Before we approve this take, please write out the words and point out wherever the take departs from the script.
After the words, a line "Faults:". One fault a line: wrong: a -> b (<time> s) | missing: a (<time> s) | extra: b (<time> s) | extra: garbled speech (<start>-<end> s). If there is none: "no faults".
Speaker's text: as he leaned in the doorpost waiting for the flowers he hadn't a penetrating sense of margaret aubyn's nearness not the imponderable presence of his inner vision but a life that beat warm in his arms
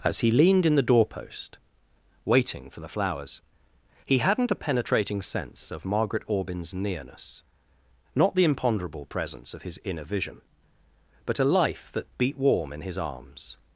as he leaned in the doorpost waiting for the flowers he hadn't a penetrating sense of margaret aubyn's nearness not the imponderable presence of his inner vision but a life that beat warm in his arms
Faults:
no faults